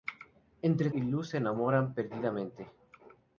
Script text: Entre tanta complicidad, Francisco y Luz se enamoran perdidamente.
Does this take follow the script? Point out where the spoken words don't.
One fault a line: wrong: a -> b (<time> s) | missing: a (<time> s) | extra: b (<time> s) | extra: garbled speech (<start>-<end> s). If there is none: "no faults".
missing: tanta complicidad Francisco (0.9 s)